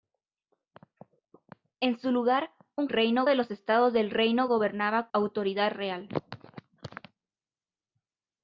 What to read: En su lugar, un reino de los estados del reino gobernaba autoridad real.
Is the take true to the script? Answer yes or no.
yes